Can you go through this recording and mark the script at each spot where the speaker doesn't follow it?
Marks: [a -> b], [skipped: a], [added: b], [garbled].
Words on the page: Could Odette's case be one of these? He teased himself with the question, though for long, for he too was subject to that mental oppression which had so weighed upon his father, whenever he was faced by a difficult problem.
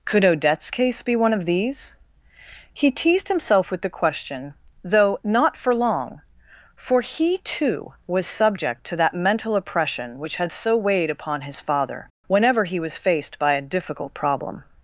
Could Odette's case be one of these? He teased himself with the question, though [added: not] for long, for he too was subject to that mental oppression which had so weighed upon his father, whenever he was faced by a difficult problem.